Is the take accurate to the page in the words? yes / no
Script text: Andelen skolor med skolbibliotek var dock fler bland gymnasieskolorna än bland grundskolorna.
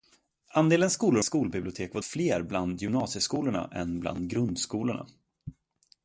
no